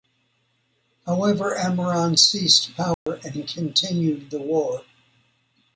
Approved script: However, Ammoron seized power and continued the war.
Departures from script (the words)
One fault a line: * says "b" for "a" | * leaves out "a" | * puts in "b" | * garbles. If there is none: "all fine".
all fine